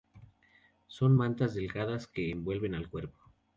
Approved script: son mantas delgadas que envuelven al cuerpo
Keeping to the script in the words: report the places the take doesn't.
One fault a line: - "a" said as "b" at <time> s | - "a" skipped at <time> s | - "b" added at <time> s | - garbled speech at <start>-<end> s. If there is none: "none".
none